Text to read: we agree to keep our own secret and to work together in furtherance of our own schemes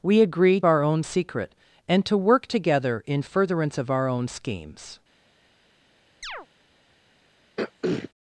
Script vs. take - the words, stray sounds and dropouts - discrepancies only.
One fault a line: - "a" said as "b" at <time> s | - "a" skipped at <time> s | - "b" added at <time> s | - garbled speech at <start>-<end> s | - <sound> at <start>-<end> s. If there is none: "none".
- "to keep" skipped at 0.6 s
- chirp at 6.2-6.5 s
- throat clearing at 7.6-8.1 s